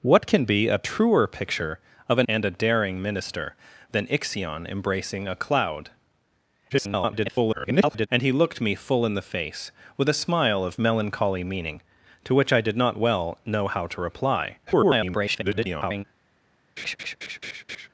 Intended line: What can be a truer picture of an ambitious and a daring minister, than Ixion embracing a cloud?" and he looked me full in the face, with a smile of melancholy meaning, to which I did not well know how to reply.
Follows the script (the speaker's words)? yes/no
no